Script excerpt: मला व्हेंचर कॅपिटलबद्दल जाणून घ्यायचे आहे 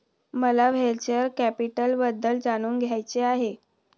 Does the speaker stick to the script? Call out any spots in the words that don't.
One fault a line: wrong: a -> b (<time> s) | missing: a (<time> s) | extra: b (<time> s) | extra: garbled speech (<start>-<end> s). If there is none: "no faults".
no faults